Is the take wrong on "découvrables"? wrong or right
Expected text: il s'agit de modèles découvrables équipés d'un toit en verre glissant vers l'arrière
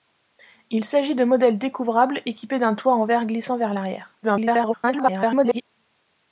right